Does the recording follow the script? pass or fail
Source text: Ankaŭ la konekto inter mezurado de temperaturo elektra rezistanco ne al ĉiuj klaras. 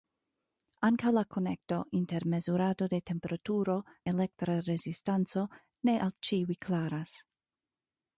pass